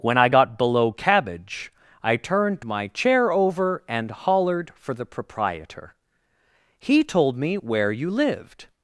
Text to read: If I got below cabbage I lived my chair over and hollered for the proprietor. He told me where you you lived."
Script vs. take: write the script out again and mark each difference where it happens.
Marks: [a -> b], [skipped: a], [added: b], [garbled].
[If -> When] I got below cabbage I [lived -> turned] my chair over and hollered for the proprietor. He told me where you [skipped: you] lived."